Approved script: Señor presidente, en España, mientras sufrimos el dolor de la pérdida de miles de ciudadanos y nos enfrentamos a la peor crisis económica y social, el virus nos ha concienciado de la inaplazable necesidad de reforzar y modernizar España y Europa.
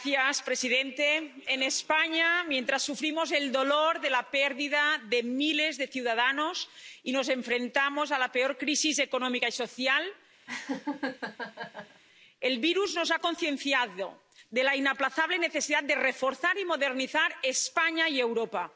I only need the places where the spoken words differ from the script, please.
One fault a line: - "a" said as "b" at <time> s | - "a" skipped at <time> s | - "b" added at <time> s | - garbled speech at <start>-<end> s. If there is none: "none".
none